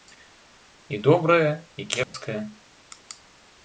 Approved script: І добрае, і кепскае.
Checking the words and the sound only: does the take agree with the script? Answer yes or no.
no